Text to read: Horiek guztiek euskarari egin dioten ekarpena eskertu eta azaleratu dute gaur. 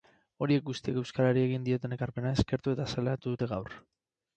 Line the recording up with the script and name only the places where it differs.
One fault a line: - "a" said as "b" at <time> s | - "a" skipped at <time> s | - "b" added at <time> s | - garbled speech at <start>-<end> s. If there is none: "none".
none